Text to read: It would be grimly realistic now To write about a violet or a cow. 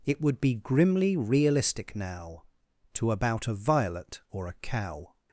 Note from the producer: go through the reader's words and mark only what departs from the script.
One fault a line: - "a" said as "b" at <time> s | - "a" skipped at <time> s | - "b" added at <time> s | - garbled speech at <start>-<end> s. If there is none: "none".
- "write" skipped at 3.1 s